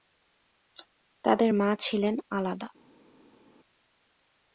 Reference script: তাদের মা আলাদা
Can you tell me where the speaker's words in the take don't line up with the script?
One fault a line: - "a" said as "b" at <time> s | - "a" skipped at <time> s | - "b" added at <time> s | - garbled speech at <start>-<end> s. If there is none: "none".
- "ছিলেন" added at 1.8 s